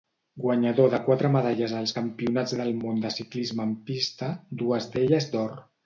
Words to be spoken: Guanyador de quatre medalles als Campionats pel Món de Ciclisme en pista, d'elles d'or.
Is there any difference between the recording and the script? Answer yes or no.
yes